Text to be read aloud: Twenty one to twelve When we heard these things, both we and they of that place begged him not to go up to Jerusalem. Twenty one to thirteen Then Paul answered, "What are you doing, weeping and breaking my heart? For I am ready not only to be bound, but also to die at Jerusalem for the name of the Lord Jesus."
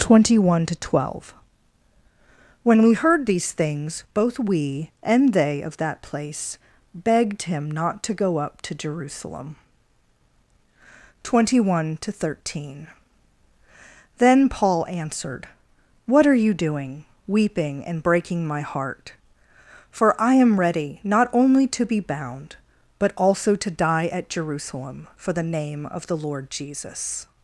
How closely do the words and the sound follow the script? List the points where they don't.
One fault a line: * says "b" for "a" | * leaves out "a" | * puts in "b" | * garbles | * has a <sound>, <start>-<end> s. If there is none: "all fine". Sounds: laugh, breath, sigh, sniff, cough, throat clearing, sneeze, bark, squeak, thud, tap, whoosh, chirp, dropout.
all fine